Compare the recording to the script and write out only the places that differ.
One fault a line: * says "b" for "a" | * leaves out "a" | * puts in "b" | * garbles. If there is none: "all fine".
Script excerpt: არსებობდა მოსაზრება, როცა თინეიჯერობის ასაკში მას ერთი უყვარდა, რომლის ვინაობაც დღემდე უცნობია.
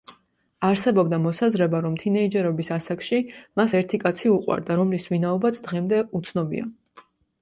* says "რომ" for "როცა"
* puts in "კაცი"